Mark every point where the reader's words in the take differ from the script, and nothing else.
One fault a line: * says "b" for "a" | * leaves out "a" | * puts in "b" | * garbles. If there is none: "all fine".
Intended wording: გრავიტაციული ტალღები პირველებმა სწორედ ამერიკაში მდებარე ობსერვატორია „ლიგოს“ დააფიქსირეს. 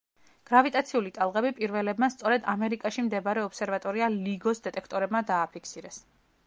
* puts in "დეტექტორებმა"